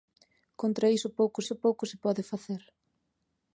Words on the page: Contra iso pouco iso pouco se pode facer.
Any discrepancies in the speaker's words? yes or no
no